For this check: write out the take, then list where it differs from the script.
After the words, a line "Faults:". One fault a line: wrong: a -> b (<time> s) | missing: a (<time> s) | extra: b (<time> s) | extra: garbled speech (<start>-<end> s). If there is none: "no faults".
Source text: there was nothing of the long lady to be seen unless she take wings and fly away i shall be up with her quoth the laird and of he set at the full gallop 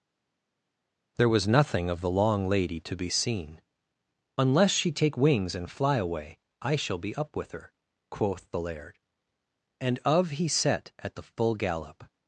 there was nothing of the long lady to be seen unless she take wings and fly away i shall be up with her quoth the laird and of he set at the full gallop
Faults:
no faults